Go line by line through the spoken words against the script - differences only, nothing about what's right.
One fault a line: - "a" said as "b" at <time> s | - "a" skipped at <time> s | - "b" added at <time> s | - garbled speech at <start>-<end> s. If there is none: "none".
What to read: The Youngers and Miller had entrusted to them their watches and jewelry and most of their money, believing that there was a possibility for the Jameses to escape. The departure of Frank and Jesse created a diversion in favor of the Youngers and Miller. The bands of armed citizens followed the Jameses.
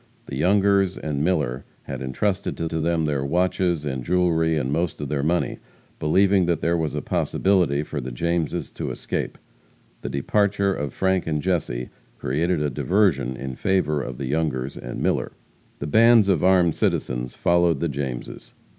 - "to" added at 2.7 s